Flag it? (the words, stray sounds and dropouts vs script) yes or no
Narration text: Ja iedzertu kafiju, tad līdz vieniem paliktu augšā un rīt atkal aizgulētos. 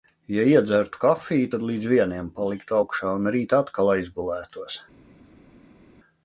no